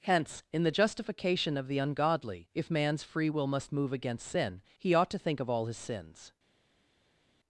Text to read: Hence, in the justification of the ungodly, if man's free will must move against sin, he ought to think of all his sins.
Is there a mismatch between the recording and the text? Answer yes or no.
no